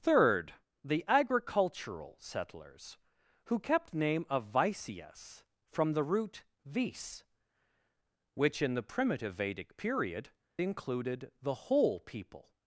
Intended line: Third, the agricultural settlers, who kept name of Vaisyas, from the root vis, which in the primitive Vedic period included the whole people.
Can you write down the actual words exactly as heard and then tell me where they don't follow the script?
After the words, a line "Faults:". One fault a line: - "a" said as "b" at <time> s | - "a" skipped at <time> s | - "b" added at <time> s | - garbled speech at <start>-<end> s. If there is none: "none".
Third, the agricultural settlers, who kept name of Vaisyas, from the root vis, which in the primitive Vedic period included the whole people.
Faults:
none